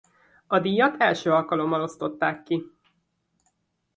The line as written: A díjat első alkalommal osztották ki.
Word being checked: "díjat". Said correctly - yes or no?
yes